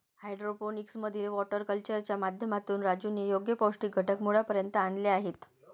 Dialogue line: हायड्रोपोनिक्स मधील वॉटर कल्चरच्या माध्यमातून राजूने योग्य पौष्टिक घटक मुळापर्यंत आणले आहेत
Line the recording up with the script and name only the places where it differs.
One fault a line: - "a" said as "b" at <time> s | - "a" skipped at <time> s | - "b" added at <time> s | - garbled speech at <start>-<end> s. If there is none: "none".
none